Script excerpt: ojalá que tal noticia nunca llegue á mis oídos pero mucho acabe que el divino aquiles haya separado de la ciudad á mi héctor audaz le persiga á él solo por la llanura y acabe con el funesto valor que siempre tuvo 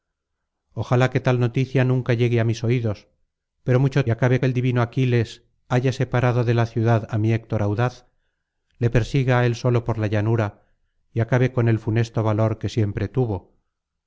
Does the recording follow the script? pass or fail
pass